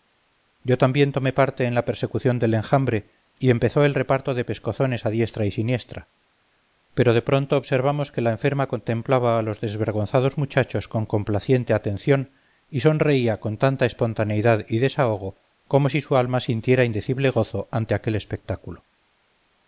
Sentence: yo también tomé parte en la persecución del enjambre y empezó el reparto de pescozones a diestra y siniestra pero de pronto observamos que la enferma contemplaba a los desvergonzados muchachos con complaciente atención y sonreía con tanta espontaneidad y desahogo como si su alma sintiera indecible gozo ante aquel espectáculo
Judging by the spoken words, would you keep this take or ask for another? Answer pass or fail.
pass